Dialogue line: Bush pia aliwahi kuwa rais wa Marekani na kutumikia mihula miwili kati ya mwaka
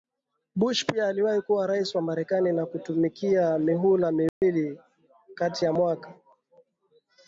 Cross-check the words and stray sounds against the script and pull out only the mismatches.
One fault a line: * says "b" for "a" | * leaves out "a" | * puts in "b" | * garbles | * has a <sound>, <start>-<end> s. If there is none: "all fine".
* has a dropout, 4.3-4.4 s